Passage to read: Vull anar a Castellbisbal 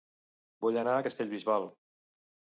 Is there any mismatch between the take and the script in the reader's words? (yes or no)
no